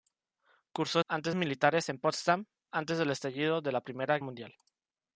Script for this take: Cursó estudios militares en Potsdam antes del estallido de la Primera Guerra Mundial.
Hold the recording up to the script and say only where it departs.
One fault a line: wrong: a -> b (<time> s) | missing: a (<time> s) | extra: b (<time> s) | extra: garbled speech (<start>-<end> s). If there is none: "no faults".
wrong: estudios -> antes (1.1 s)
missing: Guerra (4.2 s)